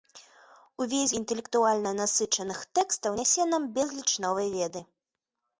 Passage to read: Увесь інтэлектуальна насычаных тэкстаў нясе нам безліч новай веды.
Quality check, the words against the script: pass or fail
pass